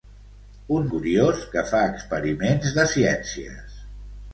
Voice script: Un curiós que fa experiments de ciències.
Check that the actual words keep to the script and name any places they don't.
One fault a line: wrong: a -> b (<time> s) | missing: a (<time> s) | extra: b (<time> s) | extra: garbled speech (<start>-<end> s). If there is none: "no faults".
no faults